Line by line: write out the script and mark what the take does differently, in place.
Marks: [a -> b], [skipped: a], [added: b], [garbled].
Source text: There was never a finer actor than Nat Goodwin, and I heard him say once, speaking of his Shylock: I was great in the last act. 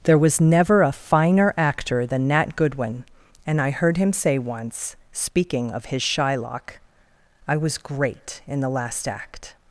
There was never a finer actor than Nat Goodwin, and I heard him say once, speaking of his Shylock: I was great in the last act.